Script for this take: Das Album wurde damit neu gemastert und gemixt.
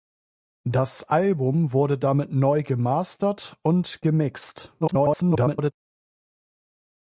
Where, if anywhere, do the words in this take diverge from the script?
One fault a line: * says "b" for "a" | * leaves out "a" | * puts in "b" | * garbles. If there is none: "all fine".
* garbles